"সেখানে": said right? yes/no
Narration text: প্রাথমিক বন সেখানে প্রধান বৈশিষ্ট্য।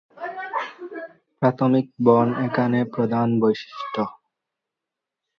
no